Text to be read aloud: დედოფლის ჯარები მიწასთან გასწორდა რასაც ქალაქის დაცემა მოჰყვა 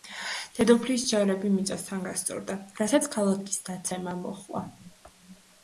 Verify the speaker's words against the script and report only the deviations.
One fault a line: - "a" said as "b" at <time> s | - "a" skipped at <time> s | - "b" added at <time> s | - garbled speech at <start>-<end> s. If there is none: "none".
none